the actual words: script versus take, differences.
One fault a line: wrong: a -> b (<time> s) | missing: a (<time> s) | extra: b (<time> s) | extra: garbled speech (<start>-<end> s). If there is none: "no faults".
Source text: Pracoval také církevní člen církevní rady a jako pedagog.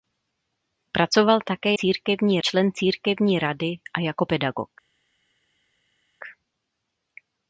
no faults